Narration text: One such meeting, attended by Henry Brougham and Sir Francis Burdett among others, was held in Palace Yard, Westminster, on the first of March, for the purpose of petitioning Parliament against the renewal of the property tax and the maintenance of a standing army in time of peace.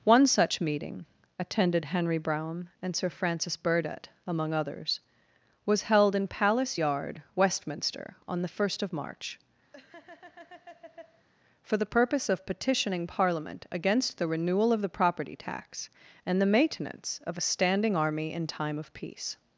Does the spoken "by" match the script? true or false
false